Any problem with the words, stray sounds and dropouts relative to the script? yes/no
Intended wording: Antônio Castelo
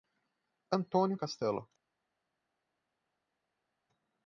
no